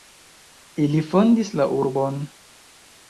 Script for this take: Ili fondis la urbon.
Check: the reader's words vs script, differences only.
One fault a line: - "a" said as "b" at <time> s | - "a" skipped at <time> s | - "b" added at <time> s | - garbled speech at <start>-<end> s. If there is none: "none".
none